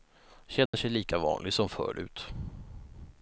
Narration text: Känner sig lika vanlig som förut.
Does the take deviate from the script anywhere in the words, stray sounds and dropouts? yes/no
yes